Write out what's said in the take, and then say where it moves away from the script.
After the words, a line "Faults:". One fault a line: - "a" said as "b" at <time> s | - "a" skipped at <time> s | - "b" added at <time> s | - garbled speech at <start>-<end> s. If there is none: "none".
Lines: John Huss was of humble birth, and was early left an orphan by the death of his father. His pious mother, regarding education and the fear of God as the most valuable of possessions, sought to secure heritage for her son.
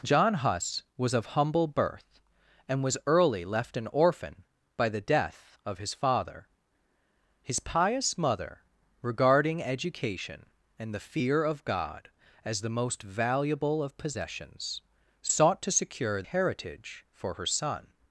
John Huss was of humble birth, and was early left an orphan by the death of his father. His pious mother, regarding education and the fear of God as the most valuable of possessions, sought to secure heritage for her son.
Faults:
none